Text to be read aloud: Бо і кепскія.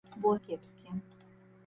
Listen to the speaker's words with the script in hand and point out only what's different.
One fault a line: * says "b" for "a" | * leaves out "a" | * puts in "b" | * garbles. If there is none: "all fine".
all fine